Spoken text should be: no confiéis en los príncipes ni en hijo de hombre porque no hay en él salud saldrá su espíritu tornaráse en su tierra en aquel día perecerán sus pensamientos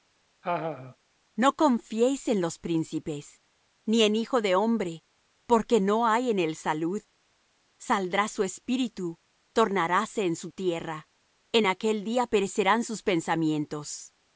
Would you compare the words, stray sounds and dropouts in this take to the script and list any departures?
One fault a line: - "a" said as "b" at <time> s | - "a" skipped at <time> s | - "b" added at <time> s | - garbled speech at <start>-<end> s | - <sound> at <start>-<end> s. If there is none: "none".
- laugh at 0.4-1.0 s